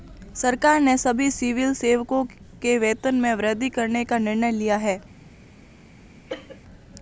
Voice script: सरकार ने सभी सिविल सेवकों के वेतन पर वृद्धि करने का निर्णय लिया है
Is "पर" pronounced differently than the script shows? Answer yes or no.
yes